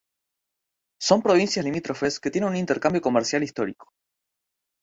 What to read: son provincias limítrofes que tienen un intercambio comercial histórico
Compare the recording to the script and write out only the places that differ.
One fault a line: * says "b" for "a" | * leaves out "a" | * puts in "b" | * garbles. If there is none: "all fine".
all fine